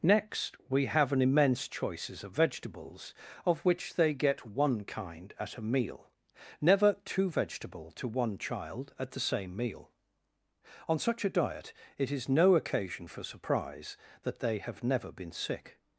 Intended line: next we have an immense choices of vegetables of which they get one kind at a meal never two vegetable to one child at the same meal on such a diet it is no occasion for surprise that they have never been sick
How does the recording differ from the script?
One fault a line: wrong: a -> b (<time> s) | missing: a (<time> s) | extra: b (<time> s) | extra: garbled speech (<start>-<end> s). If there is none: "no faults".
no faults